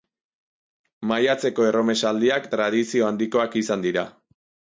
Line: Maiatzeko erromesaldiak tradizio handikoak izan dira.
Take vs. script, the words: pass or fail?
pass